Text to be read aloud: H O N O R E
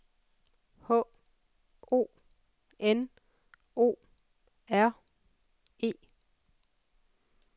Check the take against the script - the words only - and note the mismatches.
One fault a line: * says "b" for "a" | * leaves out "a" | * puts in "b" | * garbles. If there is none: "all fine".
all fine